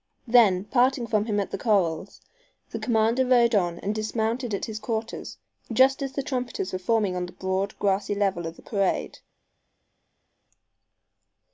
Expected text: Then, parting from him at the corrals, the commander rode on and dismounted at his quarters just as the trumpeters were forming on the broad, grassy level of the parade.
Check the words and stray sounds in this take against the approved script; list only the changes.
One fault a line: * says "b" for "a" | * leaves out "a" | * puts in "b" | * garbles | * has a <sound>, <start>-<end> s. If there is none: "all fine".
all fine